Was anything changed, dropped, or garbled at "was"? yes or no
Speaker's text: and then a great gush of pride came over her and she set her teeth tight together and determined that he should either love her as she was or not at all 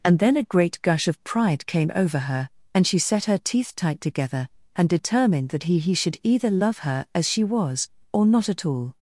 no